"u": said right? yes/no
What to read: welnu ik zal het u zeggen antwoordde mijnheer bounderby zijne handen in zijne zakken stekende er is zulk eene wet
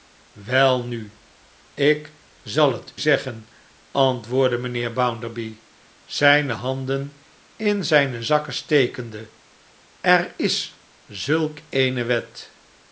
no